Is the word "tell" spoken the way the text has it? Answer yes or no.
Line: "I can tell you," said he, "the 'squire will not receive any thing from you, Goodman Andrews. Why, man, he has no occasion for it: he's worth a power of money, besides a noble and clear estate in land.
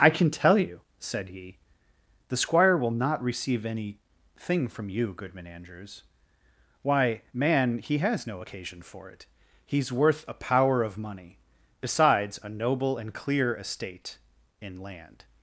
yes